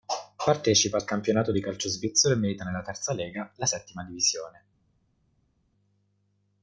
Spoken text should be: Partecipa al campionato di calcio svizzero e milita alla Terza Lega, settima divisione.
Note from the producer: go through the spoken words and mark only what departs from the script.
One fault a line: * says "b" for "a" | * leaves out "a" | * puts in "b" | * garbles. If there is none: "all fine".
* says "nella" for "alla"
* puts in "la"